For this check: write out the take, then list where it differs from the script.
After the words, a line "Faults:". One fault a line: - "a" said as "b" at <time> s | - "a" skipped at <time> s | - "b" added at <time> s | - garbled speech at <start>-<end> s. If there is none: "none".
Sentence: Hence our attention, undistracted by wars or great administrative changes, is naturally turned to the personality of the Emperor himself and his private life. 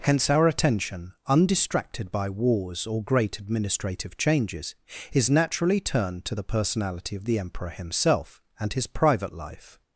Hence our attention, undistracted by wars or great administrative changes, is naturally turned to the personality of the Emperor himself and his private life.
Faults:
none